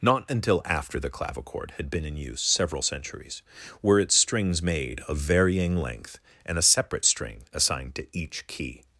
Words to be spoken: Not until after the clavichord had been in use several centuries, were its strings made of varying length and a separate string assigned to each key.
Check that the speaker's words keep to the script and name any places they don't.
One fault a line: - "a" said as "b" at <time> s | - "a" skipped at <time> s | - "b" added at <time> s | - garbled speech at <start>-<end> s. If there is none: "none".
none